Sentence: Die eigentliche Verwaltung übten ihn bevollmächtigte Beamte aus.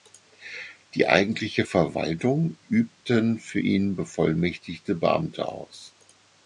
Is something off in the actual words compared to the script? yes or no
yes